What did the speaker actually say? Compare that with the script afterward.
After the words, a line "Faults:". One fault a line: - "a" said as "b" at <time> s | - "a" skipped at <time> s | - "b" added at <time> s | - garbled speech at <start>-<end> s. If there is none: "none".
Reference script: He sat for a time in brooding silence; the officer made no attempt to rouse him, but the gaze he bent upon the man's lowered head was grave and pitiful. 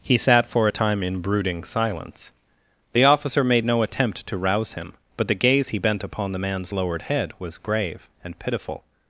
He sat for a time in brooding silence; the officer made no attempt to rouse him, but the gaze he bent upon the man's lowered head was grave and pitiful.
Faults:
none